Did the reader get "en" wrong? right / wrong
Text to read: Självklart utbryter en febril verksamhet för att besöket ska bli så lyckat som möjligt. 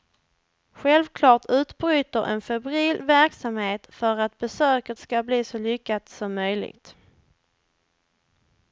right